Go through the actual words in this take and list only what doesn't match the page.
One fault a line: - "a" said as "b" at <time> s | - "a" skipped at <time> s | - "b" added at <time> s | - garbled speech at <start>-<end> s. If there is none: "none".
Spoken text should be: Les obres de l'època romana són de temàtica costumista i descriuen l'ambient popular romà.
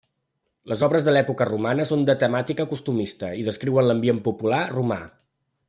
none